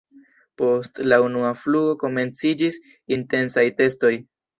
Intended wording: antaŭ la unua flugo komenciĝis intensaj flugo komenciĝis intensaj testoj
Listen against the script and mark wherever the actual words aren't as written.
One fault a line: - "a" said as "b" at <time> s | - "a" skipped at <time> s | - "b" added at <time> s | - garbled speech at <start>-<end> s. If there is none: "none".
- "antaŭ" said as "post" at 0.6 s
- "flugo komenciĝis intensaj" skipped at 3.7 s